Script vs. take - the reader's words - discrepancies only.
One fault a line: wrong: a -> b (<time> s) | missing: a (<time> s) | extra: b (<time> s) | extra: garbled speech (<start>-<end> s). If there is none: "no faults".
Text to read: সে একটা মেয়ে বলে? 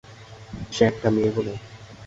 no faults